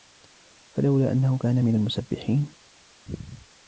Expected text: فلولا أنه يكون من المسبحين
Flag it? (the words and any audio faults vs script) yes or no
yes